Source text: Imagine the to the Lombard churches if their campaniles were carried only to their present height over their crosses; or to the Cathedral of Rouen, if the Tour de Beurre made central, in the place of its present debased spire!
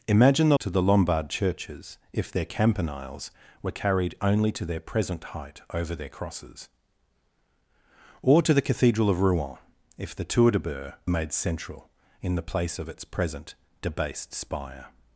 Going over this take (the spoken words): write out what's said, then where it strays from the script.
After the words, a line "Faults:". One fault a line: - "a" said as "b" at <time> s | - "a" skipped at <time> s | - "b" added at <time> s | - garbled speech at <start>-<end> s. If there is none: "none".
Imagine the to the Lombard churches if their campaniles were carried only to their present height over their crosses; or to the Cathedral of Rouen, if the Tour de Beurre made central, in the place of its present debased spire!
Faults:
none